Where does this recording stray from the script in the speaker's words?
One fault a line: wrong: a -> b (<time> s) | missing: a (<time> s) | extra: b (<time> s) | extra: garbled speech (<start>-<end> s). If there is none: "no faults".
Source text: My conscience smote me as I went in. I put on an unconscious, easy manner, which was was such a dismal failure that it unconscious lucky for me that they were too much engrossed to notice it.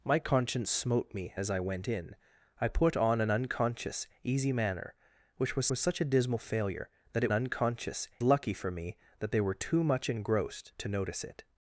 no faults